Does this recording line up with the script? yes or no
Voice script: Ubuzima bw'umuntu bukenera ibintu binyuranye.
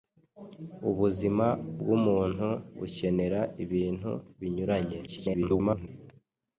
no